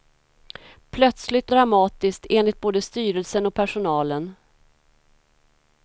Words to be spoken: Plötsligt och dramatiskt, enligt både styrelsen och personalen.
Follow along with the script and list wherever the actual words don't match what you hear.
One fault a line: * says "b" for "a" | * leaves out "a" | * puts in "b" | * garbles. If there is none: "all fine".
* leaves out "och"